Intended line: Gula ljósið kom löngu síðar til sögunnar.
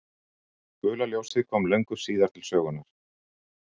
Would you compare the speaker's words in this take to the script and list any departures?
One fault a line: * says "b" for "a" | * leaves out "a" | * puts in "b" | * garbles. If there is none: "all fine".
all fine